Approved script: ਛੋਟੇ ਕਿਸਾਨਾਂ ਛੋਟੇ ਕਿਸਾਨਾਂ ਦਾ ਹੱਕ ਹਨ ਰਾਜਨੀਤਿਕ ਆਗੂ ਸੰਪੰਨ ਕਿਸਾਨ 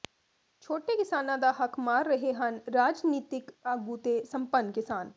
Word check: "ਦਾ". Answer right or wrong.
wrong